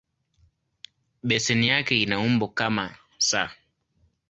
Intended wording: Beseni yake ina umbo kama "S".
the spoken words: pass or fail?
pass